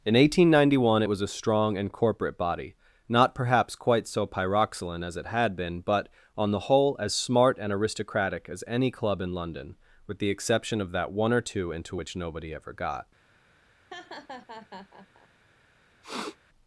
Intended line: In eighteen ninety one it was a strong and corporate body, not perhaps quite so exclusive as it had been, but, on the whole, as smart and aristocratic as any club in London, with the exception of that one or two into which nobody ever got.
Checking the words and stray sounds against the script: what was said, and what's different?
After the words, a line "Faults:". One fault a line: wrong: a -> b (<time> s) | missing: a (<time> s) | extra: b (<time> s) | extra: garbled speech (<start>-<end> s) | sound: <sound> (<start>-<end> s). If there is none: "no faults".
In eighteen ninety one it was a strong and corporate body, not perhaps quite so pyroxylin as it had been, but, on the whole, as smart and aristocratic as any club in London, with the exception of that one or two into which nobody ever got.
Faults:
wrong: exclusive -> pyroxylin (4.3 s)
sound: laugh (13.9-15.3 s)
sound: sniff (16.0-16.4 s)